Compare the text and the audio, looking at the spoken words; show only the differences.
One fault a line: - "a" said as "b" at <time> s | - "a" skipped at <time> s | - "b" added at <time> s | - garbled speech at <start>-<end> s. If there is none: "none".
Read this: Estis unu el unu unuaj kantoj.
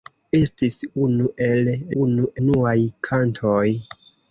none